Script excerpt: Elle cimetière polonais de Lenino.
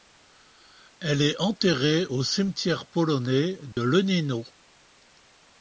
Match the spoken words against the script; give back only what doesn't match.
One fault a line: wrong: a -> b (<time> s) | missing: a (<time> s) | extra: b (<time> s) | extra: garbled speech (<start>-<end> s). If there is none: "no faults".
extra: est enterrée au (1.2 s)